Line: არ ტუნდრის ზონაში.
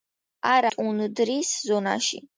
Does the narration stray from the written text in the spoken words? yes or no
no